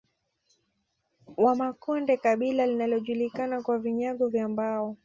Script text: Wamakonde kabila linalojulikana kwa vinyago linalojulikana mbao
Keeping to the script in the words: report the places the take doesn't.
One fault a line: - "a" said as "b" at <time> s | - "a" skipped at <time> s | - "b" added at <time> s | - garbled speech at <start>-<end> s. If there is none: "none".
- "linalojulikana" said as "vya" at 4.3 s